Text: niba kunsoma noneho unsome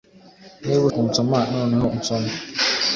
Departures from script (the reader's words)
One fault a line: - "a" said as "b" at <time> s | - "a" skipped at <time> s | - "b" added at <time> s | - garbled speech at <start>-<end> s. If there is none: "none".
none